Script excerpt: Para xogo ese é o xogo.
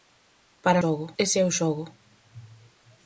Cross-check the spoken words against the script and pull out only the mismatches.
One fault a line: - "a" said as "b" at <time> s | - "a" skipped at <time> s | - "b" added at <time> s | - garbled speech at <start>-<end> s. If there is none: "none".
none